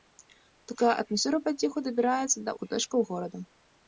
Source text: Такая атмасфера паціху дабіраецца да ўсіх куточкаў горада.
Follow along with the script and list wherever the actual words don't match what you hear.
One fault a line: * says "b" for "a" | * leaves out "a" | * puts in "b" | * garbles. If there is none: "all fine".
* leaves out "ўсіх"